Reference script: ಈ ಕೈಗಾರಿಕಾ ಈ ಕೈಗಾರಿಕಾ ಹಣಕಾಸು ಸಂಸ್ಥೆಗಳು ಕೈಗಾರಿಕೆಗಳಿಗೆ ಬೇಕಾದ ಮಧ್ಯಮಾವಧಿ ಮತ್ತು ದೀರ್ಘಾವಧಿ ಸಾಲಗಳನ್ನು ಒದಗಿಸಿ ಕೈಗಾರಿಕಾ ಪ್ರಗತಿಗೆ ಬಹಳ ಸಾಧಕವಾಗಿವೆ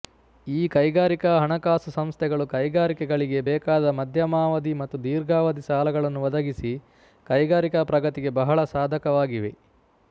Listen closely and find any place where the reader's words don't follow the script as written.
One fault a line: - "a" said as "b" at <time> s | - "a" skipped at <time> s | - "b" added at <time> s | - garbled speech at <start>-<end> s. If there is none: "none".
- "ಈ ಕೈಗಾರಿಕಾ" skipped at 1.3 s